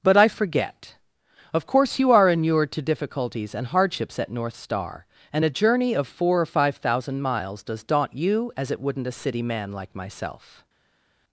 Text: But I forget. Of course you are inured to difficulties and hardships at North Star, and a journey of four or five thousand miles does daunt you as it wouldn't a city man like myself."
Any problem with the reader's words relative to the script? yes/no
no